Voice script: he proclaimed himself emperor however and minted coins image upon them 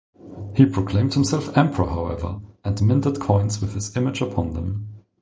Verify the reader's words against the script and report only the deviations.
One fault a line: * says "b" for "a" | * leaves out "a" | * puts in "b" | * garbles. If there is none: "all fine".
* puts in "with his"